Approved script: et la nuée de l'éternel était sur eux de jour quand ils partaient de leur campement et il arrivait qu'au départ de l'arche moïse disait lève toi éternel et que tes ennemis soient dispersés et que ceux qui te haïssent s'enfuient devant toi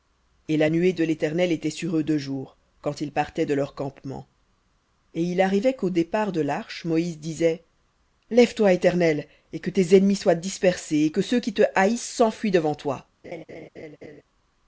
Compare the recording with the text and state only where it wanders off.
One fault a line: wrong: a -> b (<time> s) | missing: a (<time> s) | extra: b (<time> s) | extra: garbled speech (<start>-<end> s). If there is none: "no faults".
no faults